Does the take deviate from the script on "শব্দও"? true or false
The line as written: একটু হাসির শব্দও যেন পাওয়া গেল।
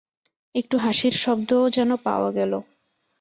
false